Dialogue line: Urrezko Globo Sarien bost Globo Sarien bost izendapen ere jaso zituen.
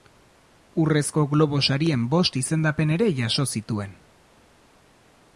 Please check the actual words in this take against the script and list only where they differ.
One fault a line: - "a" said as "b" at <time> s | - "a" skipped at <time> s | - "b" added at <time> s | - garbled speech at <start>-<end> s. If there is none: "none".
- "Globo Sarien bost" skipped at 2.4 s